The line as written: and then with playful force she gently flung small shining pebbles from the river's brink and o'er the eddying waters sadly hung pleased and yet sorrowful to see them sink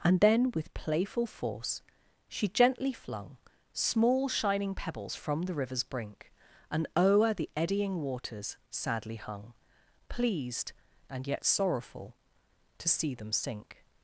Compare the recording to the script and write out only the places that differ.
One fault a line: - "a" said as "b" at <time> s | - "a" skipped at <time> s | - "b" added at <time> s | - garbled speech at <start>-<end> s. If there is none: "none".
none